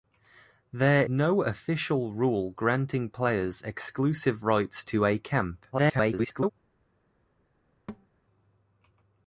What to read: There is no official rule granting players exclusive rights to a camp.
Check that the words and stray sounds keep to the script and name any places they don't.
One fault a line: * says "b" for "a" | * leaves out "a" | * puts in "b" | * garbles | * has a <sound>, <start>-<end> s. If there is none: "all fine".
* leaves out "is"
* garbles
* has a thud, 7.9-8.1 s